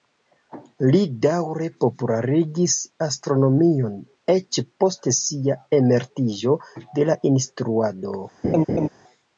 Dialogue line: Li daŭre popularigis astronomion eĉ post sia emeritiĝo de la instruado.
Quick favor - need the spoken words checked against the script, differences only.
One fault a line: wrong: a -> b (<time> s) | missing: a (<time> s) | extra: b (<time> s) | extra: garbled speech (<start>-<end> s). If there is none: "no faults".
no faults